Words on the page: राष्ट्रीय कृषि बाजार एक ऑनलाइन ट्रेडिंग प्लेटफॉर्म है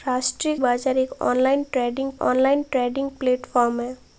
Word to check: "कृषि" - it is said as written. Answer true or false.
false